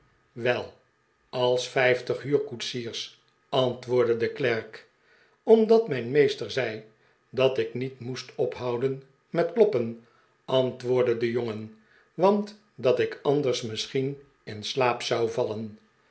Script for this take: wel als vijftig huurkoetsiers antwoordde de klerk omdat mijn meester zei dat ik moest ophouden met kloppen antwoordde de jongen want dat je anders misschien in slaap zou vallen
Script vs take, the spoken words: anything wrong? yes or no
yes